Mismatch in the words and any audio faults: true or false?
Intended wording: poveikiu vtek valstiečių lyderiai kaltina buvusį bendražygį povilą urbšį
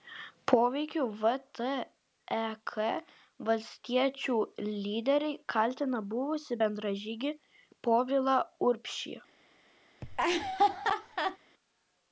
true